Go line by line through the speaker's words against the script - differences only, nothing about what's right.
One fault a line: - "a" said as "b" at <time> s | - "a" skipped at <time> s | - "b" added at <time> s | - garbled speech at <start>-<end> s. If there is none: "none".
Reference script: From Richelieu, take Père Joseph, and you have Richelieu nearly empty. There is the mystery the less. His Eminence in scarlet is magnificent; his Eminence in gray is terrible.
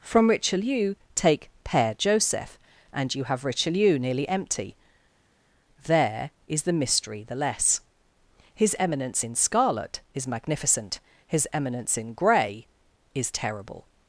none